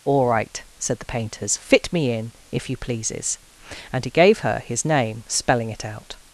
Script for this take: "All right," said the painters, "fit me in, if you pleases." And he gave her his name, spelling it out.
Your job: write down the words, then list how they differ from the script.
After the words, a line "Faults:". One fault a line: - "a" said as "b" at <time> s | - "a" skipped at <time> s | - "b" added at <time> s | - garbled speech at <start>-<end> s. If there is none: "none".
"All right," said the painters, "fit me in, if you pleases." And he gave her his name, spelling it out.
Faults:
none